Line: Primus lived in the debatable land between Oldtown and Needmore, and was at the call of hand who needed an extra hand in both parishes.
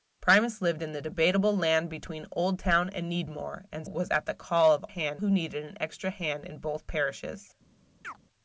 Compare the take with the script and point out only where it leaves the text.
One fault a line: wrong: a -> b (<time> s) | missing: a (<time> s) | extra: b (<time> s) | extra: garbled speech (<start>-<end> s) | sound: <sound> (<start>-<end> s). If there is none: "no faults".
sound: chirp (8.0-8.2 s)